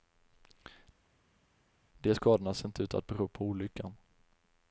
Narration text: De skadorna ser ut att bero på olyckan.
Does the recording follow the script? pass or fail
fail